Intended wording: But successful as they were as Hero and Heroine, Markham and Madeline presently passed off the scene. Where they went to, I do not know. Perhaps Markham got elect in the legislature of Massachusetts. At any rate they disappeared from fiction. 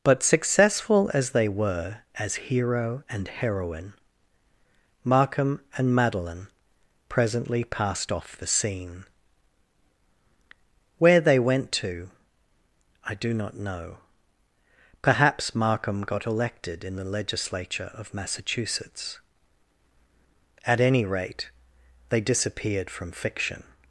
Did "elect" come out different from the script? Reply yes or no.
yes